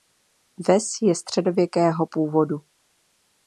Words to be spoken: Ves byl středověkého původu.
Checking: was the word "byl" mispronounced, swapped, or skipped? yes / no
yes